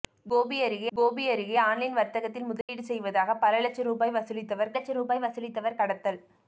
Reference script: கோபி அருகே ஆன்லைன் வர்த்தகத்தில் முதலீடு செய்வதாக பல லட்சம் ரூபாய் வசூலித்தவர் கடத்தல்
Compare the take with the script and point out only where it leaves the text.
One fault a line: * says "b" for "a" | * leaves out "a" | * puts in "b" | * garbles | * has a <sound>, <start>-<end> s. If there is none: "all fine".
* puts in "கோபி அருகே"
* has a dropout, 2.6-2.7 s
* puts in "லட்சம் ரூபாய் வசூலித்தவர்"